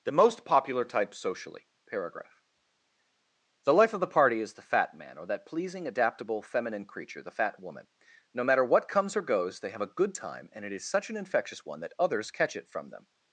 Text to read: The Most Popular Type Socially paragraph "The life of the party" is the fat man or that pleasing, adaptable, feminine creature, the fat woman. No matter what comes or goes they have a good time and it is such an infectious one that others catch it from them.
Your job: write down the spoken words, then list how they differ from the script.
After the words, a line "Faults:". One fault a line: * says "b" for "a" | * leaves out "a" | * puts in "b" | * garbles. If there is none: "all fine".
The Most Popular Type Socially paragraph "The life of the party" is the fat man or that pleasing, adaptable, feminine creature, the fat woman. No matter what comes or goes they have a good time and it is such an infectious one that others catch it from them.
Faults:
all fine